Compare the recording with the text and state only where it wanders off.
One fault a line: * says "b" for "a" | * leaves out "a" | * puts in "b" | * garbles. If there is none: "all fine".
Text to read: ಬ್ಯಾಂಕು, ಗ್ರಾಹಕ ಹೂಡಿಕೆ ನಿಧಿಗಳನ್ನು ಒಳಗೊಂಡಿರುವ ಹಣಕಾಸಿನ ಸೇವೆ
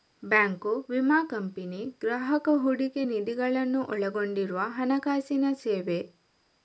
* puts in "ವಿಮಾ ಕಂಪನಿ"